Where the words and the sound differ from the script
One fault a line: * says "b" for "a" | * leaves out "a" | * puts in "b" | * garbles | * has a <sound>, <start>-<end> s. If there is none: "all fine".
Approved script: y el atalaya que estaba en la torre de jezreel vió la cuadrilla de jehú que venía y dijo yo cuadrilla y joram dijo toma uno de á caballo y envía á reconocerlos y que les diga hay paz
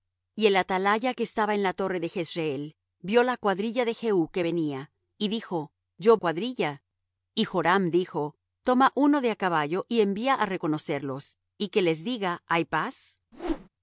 * has a whoosh, 13.3-13.7 s